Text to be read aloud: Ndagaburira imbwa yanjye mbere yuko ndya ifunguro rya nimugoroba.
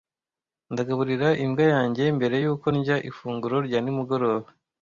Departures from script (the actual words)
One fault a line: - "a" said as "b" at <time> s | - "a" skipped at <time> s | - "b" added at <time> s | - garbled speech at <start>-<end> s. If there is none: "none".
none